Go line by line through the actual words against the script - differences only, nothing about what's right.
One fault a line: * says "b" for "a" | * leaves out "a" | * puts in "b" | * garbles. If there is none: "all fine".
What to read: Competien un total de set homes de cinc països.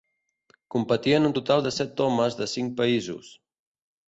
all fine